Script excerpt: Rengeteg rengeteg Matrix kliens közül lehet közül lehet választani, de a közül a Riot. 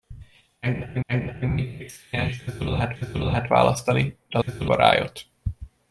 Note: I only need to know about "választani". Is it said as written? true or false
true